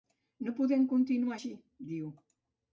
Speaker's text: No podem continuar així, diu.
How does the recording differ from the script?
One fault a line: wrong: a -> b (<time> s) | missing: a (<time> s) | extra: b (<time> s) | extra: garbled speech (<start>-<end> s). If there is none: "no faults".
no faults